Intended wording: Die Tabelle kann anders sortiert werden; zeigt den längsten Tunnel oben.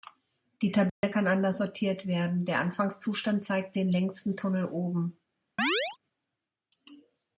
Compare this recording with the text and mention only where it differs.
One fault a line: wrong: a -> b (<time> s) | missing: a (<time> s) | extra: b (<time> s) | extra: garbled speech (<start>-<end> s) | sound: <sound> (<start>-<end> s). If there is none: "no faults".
sound: dropout (0.9-1.0 s)
extra: der Anfangszustand (2.4 s)
sound: chirp (5.6-6.0 s)